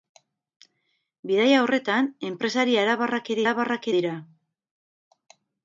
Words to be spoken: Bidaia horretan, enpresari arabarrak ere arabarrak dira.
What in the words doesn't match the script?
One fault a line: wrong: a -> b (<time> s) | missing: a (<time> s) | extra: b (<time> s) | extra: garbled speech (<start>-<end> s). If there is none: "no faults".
no faults